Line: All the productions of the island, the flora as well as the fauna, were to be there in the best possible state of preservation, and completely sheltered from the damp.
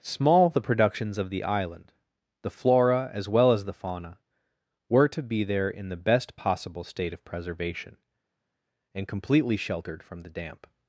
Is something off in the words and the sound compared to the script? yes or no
yes